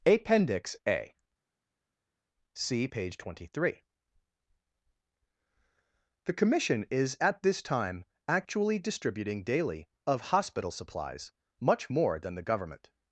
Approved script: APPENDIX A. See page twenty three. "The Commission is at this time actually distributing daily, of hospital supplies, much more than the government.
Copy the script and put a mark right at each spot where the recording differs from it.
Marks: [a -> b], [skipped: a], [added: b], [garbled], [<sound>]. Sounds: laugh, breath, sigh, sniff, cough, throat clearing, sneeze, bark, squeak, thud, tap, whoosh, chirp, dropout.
APPENDIX A. See page twenty three. "The Commission is at this time actually distributing daily, of hospital supplies, much more than the government.